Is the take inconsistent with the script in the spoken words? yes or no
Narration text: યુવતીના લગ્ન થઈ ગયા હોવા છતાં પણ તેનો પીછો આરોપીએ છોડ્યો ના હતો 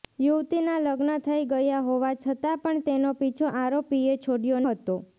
yes